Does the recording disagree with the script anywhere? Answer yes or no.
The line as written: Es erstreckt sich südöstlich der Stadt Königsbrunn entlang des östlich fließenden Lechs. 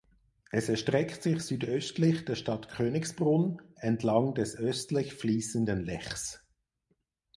no